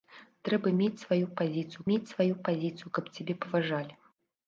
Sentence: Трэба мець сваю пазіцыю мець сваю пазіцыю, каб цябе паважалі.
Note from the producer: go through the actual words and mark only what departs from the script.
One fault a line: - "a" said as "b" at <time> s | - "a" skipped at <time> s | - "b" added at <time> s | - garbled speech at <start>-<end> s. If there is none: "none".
none